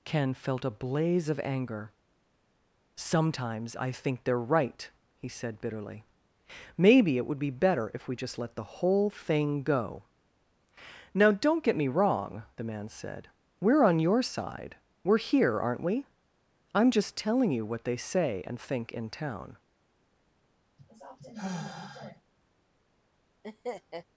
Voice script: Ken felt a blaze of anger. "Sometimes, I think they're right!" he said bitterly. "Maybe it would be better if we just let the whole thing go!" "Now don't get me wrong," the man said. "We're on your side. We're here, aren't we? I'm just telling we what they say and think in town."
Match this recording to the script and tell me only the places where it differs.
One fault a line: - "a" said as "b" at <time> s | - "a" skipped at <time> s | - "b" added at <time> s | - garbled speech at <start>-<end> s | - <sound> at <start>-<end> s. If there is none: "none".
- "we" said as "you" at 17.5 s
- sigh at 20.8-22.2 s
- laugh at 23.4-24.0 s